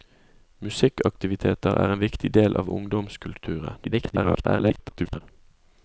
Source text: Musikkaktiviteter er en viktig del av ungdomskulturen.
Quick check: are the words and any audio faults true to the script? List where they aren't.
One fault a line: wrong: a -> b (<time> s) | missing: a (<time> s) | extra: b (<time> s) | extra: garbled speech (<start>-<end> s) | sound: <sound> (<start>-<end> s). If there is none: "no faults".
extra: garbled speech (3.8-5.2 s)